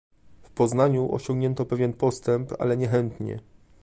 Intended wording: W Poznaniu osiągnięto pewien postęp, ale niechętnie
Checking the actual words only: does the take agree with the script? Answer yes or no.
yes